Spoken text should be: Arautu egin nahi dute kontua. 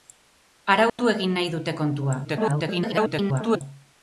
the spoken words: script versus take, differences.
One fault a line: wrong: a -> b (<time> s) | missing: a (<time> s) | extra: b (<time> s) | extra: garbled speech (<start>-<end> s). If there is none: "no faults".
extra: garbled speech (2.2-3.6 s)